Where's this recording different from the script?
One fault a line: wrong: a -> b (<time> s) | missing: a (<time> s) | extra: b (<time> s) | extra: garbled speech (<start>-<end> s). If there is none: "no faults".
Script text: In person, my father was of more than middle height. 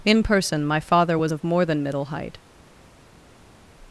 no faults